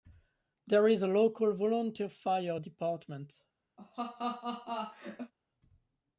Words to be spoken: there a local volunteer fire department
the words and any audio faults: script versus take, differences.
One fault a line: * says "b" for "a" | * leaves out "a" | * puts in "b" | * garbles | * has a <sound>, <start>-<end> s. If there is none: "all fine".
* puts in "is"
* has a laugh, 3.8-5.3 s